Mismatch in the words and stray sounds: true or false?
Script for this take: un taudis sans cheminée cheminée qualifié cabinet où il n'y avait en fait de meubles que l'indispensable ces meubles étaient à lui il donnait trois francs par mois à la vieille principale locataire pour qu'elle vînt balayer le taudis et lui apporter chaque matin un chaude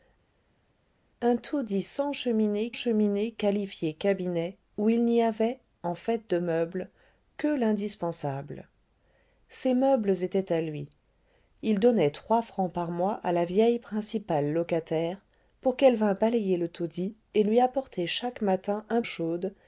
false